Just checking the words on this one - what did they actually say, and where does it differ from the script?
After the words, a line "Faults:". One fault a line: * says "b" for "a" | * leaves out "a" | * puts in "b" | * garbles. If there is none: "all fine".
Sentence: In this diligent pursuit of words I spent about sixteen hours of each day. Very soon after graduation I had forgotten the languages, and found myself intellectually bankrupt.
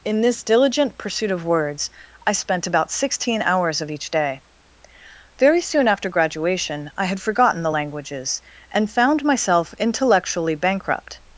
In this diligent pursuit of words I spent about sixteen hours of each day. Very soon after graduation I had forgotten the languages, and found myself intellectually bankrupt.
Faults:
all fine